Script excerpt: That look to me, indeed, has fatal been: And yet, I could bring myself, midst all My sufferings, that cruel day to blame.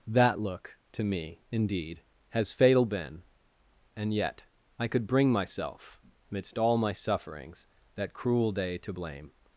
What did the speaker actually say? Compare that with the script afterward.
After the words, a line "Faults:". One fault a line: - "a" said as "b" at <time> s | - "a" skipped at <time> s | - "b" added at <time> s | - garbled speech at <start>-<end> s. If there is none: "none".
That look to me, indeed, has fatal been: And yet, I could bring myself, midst all My sufferings, that cruel day to blame.
Faults:
none